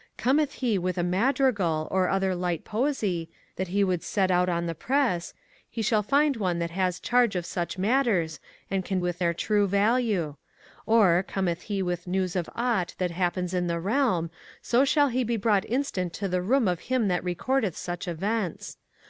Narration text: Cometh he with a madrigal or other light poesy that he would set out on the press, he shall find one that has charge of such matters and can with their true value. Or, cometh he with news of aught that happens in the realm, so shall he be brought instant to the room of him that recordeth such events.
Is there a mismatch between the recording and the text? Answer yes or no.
no